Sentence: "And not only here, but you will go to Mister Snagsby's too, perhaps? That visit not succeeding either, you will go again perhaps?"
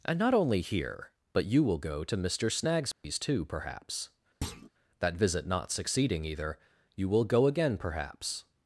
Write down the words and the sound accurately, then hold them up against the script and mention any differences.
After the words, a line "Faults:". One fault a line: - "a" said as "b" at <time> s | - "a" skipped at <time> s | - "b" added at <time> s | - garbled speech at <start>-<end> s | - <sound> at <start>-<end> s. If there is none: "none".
"And not only here, but you will go to Mister Snagsby's too, perhaps? That visit not succeeding either, you will go again perhaps?"
Faults:
- dropout at 2.9-3.0 s
- thud at 4.4-4.7 s